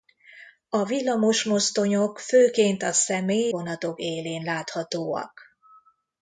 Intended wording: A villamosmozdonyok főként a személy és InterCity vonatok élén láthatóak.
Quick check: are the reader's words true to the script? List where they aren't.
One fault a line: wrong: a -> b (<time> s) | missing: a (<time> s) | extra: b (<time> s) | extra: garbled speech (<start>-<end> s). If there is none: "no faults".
missing: és InterCity (3.5 s)